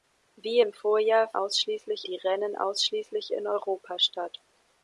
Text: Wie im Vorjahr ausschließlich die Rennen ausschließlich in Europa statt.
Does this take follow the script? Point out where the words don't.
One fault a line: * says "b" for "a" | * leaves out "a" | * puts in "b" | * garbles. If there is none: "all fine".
all fine